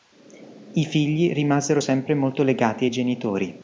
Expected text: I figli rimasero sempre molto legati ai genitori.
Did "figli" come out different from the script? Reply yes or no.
no